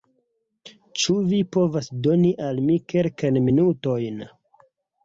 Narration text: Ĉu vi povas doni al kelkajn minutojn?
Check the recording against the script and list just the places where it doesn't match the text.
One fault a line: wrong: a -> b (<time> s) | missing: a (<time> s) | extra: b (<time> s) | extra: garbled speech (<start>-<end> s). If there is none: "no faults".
extra: mi (2.7 s)